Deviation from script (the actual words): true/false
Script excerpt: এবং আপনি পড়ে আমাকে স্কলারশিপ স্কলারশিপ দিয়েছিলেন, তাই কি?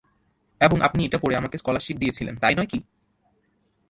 true